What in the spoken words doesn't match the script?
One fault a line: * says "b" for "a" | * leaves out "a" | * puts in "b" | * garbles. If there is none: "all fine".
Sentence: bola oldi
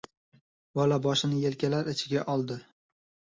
* puts in "boshini yelkalari ichiga"